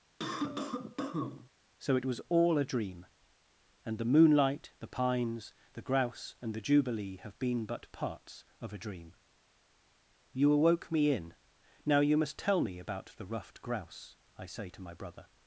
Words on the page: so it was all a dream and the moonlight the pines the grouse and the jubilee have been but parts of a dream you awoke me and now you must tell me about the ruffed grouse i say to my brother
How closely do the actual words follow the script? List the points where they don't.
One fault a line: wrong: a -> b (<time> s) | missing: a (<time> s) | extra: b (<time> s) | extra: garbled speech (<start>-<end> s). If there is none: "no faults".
wrong: and -> in (11.1 s)